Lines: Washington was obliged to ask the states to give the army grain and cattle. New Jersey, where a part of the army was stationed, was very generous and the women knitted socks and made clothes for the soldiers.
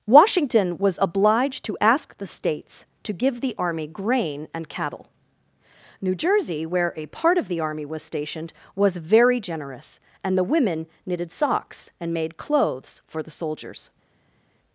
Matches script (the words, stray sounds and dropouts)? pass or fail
pass